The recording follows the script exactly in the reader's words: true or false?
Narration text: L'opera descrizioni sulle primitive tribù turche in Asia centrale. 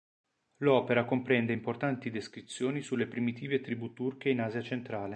false